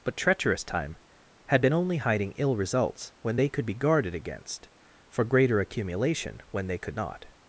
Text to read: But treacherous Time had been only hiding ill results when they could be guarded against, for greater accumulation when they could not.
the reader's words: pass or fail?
pass